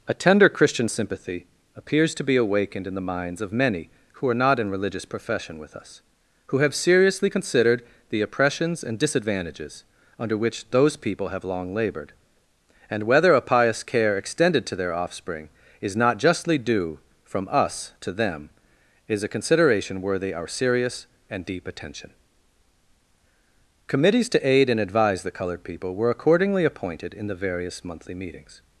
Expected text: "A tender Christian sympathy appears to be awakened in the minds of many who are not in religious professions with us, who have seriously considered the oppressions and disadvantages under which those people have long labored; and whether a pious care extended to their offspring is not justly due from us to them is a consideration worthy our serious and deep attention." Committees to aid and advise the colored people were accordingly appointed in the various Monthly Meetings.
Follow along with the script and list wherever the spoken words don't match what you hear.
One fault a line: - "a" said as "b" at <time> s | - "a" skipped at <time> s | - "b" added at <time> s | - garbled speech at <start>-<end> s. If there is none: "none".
- "professions" said as "profession" at 5.0 s